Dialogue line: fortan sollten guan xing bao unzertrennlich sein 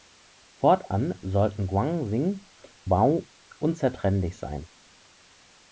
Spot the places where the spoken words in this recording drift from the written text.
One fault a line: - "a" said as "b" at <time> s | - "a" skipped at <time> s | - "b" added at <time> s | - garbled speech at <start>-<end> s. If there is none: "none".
none